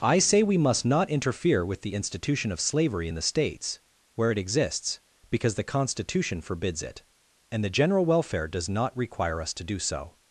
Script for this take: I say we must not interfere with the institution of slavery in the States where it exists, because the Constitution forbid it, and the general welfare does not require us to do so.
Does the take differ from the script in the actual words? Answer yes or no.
yes